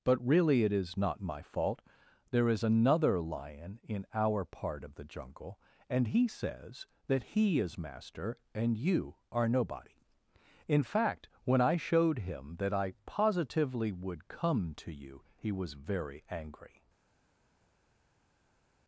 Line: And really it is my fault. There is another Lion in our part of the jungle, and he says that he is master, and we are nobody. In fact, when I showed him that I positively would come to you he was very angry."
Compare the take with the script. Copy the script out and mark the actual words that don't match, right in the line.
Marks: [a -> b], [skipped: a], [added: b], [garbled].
[And -> But] really it is [added: not] my fault. There is another Lion in our part of the jungle, and he says that he is master, and [we -> you] are nobody. In fact, when I showed him that I positively would come to you he was very angry."